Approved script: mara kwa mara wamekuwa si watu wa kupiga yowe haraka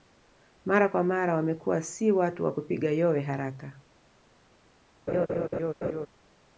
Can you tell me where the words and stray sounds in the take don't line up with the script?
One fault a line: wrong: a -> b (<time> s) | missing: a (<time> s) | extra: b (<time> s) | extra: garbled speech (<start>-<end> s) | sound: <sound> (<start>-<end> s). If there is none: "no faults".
sound: laugh (5.1-6.1 s)